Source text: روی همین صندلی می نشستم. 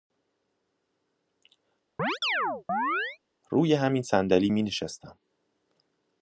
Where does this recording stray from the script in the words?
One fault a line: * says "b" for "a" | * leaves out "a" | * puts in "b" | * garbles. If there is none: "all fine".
all fine